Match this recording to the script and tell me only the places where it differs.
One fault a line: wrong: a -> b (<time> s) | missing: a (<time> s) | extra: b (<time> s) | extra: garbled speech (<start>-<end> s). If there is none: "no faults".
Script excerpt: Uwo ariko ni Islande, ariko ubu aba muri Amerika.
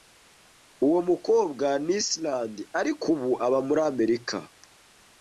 wrong: ariko -> mukobwa (1.1 s)